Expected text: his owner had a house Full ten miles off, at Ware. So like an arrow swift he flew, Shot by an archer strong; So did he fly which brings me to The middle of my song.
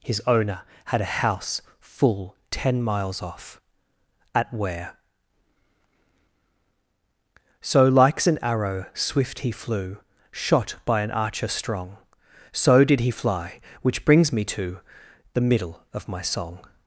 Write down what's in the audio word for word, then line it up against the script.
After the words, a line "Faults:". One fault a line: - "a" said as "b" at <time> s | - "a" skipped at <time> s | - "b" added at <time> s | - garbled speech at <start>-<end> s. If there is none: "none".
his owner had a house Full ten miles off, at Ware. So likes an arrow swift he flew, Shot by an archer strong; So did he fly which brings me to The middle of my song.
Faults:
- "like" said as "likes" at 7.9 s